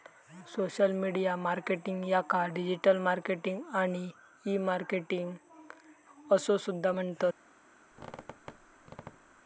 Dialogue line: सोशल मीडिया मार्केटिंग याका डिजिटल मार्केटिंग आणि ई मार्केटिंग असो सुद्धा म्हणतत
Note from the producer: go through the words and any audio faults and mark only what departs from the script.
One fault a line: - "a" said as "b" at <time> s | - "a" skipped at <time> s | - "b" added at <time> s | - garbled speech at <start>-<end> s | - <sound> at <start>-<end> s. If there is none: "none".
- squeak at 7.9-9.4 s